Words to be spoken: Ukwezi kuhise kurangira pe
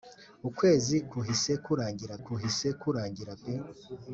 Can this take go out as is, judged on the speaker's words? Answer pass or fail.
fail